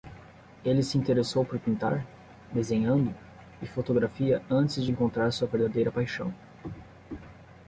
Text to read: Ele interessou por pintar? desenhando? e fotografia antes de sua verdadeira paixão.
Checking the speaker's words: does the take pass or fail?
fail